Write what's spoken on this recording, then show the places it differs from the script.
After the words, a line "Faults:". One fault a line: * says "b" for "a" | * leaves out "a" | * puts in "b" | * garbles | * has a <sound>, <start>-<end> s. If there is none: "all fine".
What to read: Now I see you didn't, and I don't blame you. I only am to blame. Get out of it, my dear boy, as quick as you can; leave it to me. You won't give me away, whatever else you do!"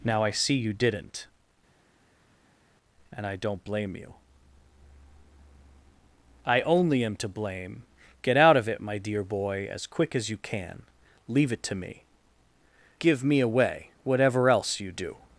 Now I see you didn't, and I don't blame you. I only am to blame. Get out of it, my dear boy, as quick as you can; leave it to me. Give me away, whatever else you do!"
Faults:
* leaves out "You won't"